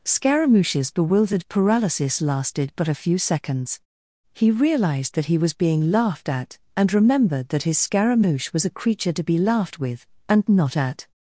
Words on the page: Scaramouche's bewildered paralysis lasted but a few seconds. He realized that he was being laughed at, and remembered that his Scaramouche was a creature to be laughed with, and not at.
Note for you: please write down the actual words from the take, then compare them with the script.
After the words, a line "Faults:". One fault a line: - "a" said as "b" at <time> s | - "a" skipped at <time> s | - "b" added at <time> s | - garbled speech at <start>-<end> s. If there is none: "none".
Scaramouche's bewildered paralysis lasted but a few seconds. He realized that he was being laughed at, and remembered that his Scaramouche was a creature to be laughed with, and not at.
Faults:
none